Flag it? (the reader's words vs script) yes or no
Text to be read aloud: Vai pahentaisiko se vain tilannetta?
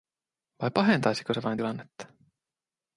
no